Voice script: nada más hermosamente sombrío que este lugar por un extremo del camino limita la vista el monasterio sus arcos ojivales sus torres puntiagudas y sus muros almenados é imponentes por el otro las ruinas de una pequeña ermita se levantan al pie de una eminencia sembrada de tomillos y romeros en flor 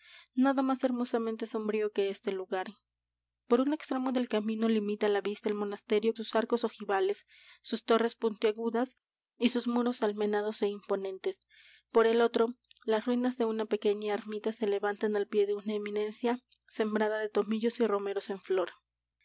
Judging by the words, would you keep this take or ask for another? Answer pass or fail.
pass